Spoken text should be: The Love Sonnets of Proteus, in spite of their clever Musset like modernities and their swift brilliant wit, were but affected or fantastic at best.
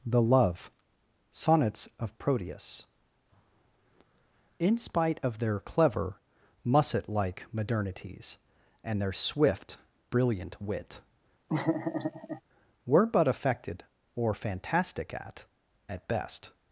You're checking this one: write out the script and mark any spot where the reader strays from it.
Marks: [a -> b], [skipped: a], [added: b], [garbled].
The Love Sonnets of Proteus, in spite of their clever Musset like modernities and their swift brilliant wit, were but affected or fantastic at [added: at] best.